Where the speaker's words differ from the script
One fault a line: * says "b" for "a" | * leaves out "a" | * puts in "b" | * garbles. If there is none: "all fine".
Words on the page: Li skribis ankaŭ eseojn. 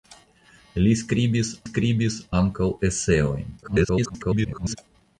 * puts in "skribis"
* garbles